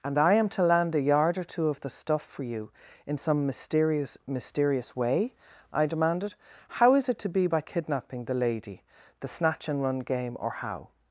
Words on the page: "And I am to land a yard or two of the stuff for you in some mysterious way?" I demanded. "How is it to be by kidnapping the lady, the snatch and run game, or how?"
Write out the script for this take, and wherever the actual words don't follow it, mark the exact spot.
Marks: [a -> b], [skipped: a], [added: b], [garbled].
"And I am to land a yard or two of the stuff for you in some mysterious [added: mysterious] way?" I demanded. "How is it to be by kidnapping the lady, the snatch and run game, or how?"